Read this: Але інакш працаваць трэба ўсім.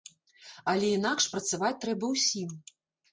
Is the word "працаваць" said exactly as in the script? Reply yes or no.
yes